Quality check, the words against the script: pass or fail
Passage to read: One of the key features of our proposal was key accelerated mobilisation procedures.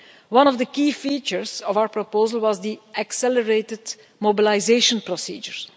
fail